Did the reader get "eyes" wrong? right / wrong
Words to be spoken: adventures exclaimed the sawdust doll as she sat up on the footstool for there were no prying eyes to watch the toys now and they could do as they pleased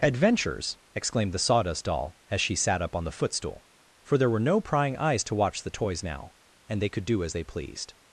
right